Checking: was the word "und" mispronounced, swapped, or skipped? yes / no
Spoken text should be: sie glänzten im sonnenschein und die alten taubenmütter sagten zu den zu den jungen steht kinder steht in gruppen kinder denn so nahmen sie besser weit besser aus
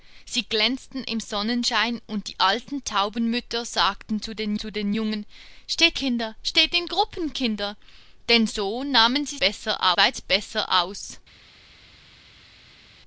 no